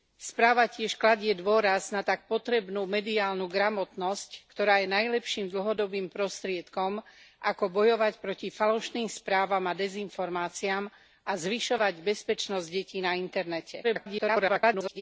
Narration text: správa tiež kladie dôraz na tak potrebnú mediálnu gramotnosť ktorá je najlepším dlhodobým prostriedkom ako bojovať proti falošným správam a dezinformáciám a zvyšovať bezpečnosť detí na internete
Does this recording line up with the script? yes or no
no